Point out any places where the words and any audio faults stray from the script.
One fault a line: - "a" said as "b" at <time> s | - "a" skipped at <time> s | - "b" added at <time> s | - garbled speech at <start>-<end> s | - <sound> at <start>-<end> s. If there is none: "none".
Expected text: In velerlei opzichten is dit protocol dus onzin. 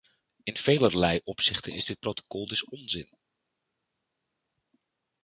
none